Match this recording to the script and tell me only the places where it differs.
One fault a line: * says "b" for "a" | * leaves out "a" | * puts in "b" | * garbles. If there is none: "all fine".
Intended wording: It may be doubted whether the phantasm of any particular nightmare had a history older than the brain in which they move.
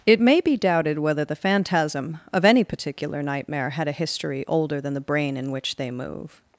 all fine